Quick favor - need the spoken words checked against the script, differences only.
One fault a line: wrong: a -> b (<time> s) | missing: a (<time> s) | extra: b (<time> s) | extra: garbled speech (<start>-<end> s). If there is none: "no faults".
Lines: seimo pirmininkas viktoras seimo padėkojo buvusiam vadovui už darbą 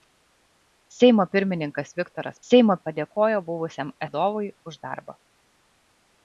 no faults